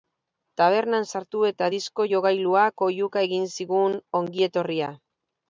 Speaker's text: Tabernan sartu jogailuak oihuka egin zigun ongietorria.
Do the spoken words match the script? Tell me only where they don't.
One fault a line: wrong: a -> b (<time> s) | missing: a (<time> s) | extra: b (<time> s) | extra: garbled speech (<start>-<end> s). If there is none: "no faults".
extra: eta disko (1.5 s)